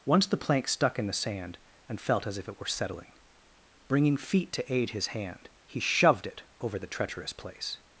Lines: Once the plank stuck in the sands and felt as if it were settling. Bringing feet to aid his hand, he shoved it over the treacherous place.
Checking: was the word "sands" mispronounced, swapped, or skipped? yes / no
yes